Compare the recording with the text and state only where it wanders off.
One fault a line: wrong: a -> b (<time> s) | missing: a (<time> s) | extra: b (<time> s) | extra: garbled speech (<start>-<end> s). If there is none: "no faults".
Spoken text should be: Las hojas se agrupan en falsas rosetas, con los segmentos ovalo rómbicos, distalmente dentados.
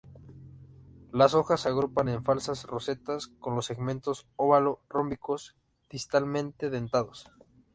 no faults